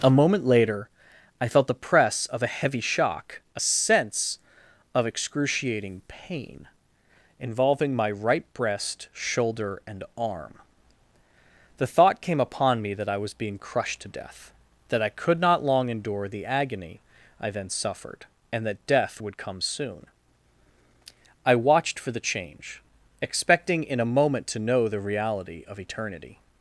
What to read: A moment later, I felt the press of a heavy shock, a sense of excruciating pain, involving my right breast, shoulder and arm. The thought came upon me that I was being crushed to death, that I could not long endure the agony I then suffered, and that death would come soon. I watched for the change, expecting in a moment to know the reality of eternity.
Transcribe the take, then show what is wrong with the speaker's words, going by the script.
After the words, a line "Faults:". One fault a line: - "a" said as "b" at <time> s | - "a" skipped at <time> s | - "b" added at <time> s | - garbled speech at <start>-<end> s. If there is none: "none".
A moment later, I felt the press of a heavy shock, a sense of excruciating pain, involving my right breast, shoulder and arm. The thought came upon me that I was being crushed to death, that I could not long endure the agony I then suffered, and that death would come soon. I watched for the change, expecting in a moment to know the reality of eternity.
Faults:
none